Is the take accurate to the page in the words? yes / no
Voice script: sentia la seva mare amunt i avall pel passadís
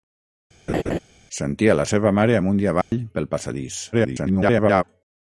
no